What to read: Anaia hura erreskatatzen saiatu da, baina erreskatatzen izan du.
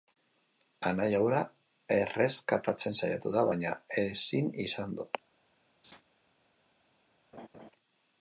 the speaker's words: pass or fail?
fail